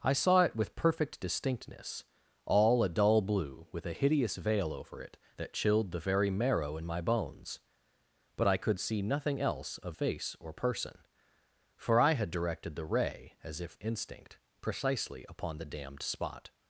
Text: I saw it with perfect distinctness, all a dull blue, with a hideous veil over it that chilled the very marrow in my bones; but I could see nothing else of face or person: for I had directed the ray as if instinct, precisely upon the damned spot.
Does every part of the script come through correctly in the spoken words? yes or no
yes